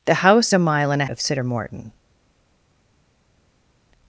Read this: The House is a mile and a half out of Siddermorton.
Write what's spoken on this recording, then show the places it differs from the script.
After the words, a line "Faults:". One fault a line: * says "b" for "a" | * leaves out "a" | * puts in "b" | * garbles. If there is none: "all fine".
The House a mile and a of Siddermorton.
Faults:
* leaves out "is"
* leaves out "half out"